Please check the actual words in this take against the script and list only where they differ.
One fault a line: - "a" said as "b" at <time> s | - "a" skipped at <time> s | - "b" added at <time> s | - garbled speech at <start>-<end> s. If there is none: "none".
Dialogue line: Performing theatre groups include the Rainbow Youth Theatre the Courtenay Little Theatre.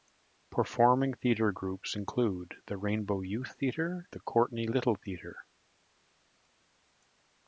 none